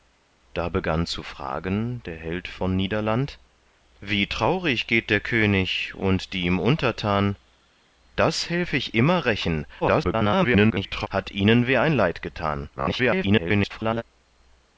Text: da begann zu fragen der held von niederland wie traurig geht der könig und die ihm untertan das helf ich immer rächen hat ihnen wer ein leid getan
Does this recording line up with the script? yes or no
no